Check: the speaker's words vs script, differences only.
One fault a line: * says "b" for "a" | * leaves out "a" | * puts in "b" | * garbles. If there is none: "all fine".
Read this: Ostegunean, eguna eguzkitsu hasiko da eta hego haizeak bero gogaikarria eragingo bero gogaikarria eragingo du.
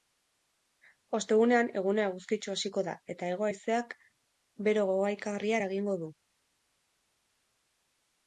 * leaves out "bero gogaikarria eragingo"